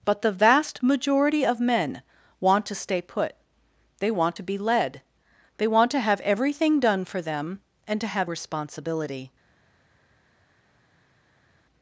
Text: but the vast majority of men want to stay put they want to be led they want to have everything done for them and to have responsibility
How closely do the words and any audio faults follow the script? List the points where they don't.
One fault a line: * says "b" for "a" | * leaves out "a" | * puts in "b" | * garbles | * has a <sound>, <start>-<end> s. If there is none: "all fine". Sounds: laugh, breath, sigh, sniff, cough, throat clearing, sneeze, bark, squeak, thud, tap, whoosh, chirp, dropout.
all fine